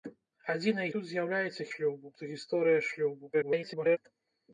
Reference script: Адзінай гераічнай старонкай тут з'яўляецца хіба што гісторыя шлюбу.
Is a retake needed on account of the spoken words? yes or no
yes